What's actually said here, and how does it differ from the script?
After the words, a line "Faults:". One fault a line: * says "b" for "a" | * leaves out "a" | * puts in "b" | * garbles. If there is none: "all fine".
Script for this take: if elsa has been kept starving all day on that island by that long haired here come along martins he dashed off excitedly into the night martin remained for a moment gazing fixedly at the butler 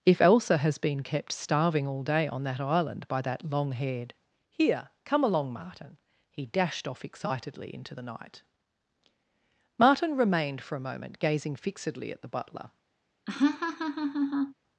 if elsa has been kept starving all day on that island by that long haired here come along martin he dashed off excitedly into the night martin remained for a moment gazing fixedly at the butler
Faults:
* says "martin" for "martins"